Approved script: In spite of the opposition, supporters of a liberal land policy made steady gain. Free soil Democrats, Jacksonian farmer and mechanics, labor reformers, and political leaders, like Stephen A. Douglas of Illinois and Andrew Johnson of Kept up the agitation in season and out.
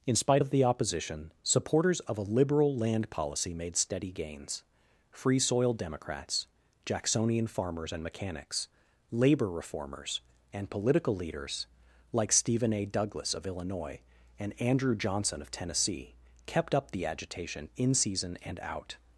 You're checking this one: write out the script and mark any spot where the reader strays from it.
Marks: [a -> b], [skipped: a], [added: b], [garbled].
In spite of the opposition, supporters of a liberal land policy made steady [gain. -> gains] Free soil Democrats, Jacksonian [farmer -> farmers] and mechanics, labor reformers, and political leaders, like Stephen A. Douglas of Illinois and Andrew Johnson of [added: Tennessee] Kept up the agitation in season and out.